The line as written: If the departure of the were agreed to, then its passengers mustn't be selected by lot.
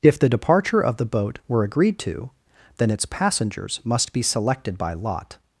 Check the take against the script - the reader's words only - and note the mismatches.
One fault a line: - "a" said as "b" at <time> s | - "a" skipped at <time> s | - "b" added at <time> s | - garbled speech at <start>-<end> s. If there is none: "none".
- "boat" added at 1.1 s
- "mustn't" said as "must" at 3.8 s